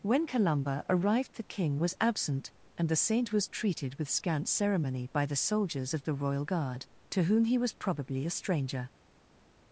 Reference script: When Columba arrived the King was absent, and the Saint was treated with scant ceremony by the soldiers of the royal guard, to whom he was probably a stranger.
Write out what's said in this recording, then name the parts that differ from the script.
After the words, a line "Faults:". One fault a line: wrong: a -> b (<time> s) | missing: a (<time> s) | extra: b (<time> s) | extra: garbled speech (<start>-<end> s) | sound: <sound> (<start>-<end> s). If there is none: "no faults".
When Columba arrived the King was absent, and the Saint was treated with scant ceremony by the soldiers of the royal guard, to whom he was probably a stranger.
Faults:
no faults